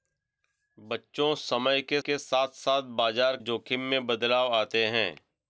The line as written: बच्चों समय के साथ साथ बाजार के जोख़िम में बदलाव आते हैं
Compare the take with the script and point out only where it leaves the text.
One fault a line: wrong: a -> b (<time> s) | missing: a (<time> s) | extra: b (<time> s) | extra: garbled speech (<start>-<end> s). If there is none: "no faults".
extra: के (2.0 s)
missing: के (3.4 s)